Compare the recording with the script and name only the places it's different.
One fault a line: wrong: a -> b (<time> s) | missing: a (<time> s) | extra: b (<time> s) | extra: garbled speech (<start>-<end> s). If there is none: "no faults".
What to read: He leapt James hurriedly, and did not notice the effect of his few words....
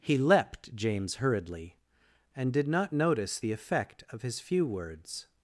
no faults